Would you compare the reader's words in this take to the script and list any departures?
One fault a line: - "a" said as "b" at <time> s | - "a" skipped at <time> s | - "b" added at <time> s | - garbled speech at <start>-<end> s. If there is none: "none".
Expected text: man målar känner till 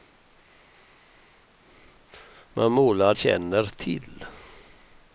none